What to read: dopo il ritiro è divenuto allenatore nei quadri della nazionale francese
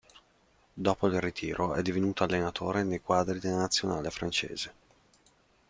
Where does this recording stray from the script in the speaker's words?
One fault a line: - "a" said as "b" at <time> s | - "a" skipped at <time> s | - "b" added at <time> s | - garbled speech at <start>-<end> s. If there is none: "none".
none